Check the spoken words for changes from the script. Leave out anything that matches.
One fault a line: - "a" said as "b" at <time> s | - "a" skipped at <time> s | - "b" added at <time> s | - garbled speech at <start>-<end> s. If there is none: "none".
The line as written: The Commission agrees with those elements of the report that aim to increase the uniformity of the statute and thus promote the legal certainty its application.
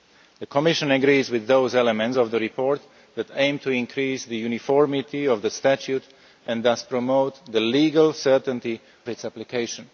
none